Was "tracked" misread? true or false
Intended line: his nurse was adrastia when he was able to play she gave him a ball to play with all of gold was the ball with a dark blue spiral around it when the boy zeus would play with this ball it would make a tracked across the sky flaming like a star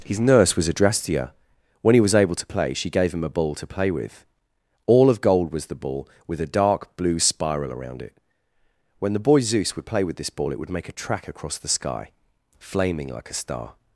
true